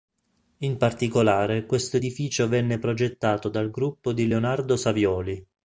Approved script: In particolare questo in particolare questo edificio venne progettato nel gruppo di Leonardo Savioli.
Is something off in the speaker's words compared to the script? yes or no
yes